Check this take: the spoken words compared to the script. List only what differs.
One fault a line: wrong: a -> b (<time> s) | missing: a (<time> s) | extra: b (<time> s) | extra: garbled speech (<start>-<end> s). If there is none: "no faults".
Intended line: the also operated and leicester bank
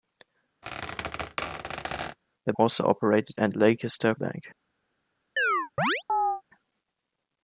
no faults